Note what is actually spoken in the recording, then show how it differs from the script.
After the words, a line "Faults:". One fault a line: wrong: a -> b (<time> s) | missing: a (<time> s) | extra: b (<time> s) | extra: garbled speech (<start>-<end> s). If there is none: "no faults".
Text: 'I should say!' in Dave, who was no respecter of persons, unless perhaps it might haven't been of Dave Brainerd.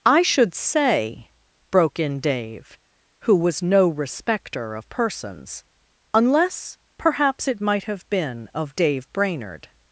'I should say!' broke in Dave, who was no respecter of persons, unless perhaps it might have been of Dave Brainerd.
Faults:
extra: broke (1.7 s)
wrong: haven't -> have (7.8 s)